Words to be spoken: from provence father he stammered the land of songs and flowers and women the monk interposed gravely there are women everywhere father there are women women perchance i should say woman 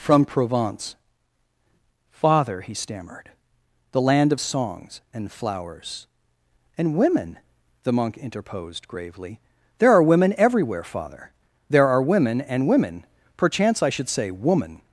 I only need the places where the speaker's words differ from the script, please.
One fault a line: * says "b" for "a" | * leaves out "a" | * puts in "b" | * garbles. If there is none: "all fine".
* puts in "and"